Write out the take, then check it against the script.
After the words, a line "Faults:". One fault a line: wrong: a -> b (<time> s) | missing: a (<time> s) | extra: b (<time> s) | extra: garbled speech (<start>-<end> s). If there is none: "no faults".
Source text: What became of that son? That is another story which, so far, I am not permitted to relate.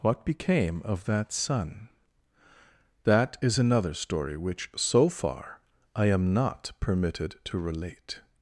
What became of that son? That is another story which, so far, I am not permitted to relate.
Faults:
no faults